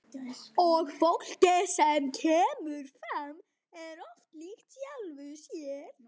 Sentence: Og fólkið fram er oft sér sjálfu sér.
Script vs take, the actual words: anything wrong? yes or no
yes